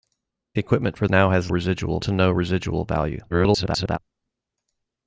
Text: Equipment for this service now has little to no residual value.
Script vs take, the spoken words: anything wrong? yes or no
yes